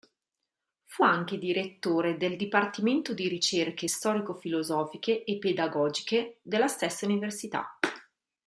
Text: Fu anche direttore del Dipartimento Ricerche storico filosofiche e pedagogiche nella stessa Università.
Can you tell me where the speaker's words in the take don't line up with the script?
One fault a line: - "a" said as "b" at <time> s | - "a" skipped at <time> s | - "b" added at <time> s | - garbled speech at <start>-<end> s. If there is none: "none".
- "di" added at 3.1 s
- "nella" said as "della" at 6.4 s